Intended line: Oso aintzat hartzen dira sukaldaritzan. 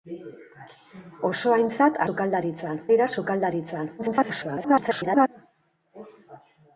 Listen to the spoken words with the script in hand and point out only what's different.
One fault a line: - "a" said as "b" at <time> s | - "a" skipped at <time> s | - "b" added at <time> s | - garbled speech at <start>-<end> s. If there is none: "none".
- "hartzen" said as "sukaldaritzan" at 2.1 s
- garbled speech at 4.0-5.3 s